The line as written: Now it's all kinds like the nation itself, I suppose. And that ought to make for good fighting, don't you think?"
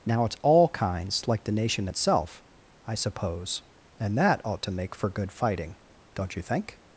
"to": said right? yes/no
yes